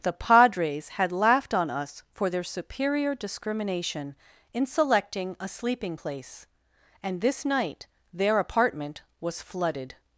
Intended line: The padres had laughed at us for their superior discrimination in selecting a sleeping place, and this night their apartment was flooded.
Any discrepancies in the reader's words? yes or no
yes